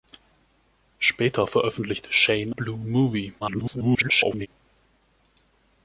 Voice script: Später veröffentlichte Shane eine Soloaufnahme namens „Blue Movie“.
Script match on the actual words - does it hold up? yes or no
no